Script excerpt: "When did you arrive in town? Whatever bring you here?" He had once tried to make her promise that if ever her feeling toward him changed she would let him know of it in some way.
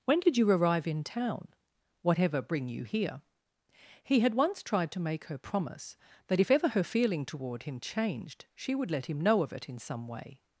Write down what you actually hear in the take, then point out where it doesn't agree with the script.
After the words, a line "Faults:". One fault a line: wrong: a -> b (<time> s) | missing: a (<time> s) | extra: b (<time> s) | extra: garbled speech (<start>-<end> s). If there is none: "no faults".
"When did you arrive in town? Whatever bring you here?" He had once tried to make her promise that if ever her feeling toward him changed she would let him know of it in some way.
Faults:
no faults